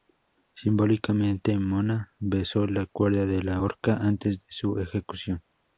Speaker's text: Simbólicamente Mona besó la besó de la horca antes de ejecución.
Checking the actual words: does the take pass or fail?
fail